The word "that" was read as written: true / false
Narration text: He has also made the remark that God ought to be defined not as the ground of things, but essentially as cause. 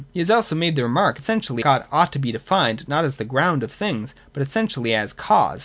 false